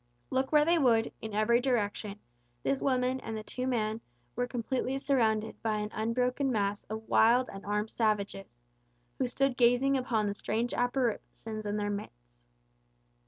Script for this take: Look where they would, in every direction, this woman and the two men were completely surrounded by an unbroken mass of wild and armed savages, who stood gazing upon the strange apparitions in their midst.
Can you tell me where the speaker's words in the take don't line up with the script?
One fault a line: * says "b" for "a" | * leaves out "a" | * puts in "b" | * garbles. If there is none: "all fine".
all fine